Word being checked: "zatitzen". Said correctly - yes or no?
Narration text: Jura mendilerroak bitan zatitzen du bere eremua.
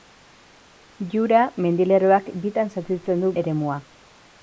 yes